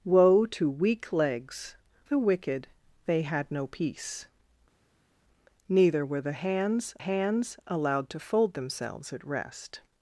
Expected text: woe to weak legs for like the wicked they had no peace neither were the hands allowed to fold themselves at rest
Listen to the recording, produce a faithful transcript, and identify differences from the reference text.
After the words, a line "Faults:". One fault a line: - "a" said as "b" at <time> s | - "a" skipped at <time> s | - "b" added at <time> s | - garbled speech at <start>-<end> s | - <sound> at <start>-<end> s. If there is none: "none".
woe to weak legs the wicked they had no peace neither were the hands hands allowed to fold themselves at rest
Faults:
- "for like" skipped at 1.8 s
- "hands" added at 7.0 s